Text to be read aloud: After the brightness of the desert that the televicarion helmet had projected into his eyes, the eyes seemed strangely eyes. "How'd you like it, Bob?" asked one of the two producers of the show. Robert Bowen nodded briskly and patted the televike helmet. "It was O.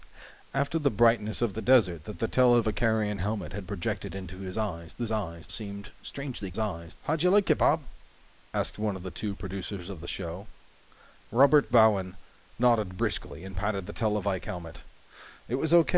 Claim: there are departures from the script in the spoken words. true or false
false